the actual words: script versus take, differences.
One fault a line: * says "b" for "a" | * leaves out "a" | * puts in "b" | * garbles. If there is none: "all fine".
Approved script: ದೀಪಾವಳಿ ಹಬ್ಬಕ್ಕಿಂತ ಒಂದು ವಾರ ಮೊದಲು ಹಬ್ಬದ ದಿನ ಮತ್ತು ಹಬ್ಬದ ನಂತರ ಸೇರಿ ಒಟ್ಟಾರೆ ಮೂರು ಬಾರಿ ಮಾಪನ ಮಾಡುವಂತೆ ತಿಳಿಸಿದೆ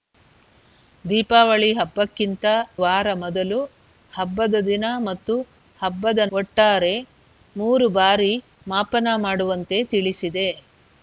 * leaves out "ಒಂದು"
* leaves out "ನಂತರ ಸೇರಿ"